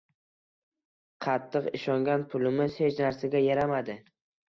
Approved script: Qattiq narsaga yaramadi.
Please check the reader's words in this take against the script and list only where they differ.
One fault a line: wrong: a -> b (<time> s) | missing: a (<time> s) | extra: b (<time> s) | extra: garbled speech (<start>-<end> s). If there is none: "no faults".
extra: ishongan pulimiz hech (1.8 s)